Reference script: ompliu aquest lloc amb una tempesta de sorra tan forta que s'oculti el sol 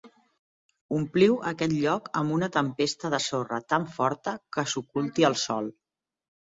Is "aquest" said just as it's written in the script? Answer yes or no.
yes